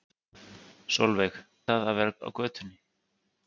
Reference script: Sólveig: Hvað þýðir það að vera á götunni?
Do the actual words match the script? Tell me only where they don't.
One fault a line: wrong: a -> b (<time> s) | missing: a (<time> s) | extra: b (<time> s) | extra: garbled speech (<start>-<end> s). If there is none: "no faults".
missing: Hvað þýðir (1.4 s)